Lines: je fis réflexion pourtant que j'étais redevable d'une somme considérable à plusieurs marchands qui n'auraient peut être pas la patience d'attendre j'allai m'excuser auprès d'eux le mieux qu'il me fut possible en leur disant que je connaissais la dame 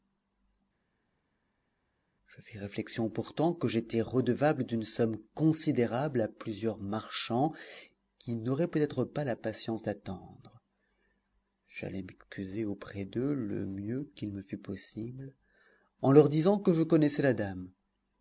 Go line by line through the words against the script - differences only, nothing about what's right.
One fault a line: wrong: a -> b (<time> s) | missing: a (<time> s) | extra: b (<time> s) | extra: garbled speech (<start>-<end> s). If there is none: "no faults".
no faults